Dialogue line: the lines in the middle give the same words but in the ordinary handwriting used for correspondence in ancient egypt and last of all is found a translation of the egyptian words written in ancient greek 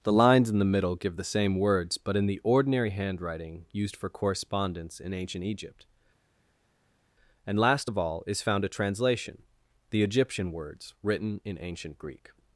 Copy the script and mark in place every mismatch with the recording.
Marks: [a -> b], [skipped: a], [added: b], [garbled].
the lines in the middle give the same words but in the ordinary handwriting used for correspondence in ancient egypt and last of all is found a translation [skipped: of] the egyptian words written in ancient greek